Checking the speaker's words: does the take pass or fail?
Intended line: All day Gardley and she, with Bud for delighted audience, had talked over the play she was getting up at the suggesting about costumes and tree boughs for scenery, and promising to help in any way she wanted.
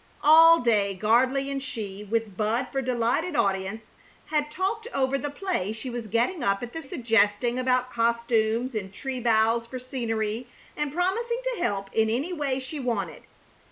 pass